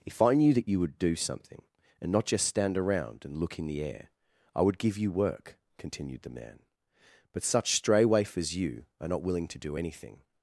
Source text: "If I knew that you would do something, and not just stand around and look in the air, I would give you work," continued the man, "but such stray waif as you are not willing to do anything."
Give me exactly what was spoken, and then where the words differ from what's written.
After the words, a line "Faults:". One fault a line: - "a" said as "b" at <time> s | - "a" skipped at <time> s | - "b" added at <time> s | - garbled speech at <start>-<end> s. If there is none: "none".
"If I knew that you would do something, and not just stand around and look in the air, I would give you work," continued the man, "but such stray waif as you are not willing to do anything."
Faults:
none